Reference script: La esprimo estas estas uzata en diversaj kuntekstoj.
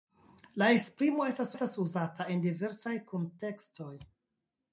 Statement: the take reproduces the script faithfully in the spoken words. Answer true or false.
true